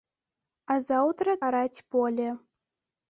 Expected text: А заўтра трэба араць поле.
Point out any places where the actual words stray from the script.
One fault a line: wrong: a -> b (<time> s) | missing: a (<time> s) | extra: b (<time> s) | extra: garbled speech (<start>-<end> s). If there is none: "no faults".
missing: трэба (1.4 s)